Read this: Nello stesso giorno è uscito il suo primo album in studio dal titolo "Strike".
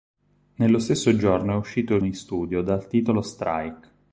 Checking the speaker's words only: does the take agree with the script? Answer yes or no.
no